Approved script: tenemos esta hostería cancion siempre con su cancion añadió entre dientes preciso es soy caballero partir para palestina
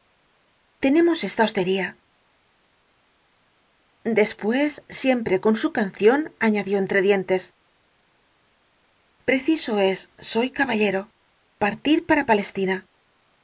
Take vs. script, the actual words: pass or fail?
fail